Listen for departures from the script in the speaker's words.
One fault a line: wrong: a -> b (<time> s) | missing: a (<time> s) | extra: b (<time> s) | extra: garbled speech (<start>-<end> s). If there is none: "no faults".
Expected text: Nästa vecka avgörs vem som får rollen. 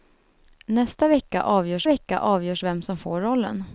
extra: vecka avgörs (1.8 s)